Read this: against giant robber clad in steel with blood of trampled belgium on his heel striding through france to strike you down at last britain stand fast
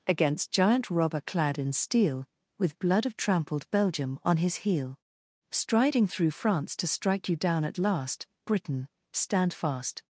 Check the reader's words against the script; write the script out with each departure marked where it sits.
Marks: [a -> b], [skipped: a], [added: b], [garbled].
against giant robber clad in steel with blood of trampled belgium on his heel striding through france to strike you down at last britain stand fast